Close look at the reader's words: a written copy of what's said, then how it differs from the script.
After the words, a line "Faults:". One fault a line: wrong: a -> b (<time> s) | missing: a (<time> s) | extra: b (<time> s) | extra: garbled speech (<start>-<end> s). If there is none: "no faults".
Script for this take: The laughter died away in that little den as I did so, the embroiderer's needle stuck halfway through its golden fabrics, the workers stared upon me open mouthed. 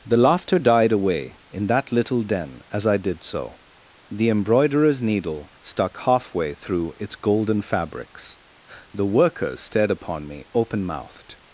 The laughter died away in that little den as I did so, the embroiderer's needle stuck halfway through its golden fabrics, the workers stared upon me open mouthed.
Faults:
no faults